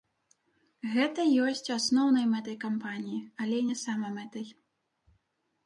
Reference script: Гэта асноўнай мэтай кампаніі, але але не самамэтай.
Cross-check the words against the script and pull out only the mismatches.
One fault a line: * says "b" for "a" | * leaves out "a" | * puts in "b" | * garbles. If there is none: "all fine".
* puts in "ёсць"
* leaves out "але"